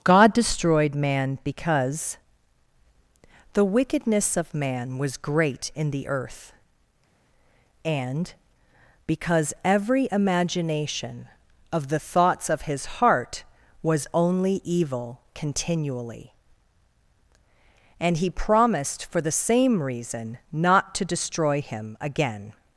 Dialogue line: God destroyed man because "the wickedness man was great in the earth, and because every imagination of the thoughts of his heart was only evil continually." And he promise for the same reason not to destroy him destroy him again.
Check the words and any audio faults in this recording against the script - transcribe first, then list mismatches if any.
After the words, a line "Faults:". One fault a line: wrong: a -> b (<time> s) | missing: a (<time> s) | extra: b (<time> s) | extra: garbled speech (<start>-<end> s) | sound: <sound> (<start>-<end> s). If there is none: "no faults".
God destroyed man because "the wickedness of man was great in the earth, and because every imagination of the thoughts of his heart was only evil continually." And he promised for the same reason not to destroy him again.
Faults:
extra: of (4.3 s)
wrong: promise -> promised (18.3 s)
missing: destroy him (22.0 s)